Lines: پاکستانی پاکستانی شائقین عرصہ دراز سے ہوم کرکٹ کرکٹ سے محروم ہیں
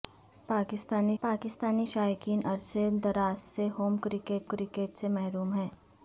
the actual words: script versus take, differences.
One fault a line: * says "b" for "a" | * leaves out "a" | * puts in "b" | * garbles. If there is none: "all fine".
all fine